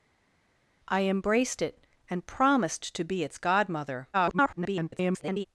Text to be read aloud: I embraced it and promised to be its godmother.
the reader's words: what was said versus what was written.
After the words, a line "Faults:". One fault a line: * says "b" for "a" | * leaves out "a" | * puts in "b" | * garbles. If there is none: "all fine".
I embraced it and promised to be its godmother. [garbled]
Faults:
* garbles